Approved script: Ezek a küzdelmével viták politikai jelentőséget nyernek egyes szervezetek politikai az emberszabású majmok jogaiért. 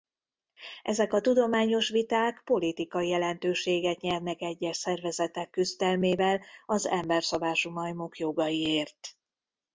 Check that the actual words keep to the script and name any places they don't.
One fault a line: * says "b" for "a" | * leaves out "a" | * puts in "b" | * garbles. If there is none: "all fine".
* says "tudományos" for "küzdelmével"
* says "küzdelmével" for "politikai"